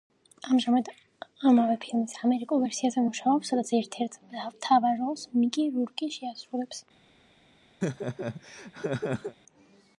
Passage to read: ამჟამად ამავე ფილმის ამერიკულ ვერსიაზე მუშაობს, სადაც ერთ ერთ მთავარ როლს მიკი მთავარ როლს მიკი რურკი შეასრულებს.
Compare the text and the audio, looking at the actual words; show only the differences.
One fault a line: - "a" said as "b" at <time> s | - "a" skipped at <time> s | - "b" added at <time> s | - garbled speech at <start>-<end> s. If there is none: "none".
- "მთავარ როლს მიკი" skipped at 5.7 s